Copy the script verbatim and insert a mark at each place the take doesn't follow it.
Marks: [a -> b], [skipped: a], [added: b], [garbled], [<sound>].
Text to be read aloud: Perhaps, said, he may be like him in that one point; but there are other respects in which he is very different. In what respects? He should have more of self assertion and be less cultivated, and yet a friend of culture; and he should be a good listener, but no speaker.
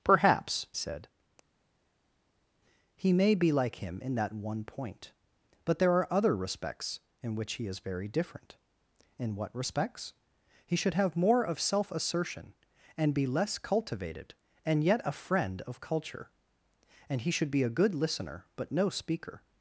Perhaps, said, he may be like him in that one point; but there are other respects in which he is very different. In what respects? He should have more of self assertion and be less cultivated, and yet a friend of culture; and he should be a good listener, but no speaker.